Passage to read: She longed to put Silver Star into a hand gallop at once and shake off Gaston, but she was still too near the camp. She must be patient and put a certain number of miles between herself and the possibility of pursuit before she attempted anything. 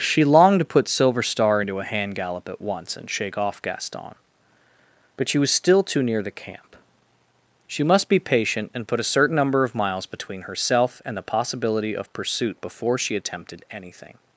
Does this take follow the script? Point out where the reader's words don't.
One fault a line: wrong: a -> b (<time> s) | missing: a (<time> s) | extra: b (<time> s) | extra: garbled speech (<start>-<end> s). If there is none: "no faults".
no faults